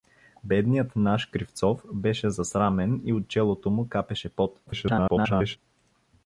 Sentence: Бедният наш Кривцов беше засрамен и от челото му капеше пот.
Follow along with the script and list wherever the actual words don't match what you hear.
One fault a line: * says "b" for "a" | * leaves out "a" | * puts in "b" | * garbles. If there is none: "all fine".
* garbles